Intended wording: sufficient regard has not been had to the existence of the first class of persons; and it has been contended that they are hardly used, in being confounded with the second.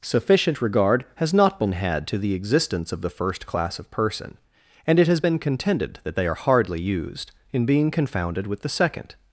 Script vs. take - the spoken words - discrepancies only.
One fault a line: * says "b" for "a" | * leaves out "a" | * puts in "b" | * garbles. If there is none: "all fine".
* says "person" for "persons"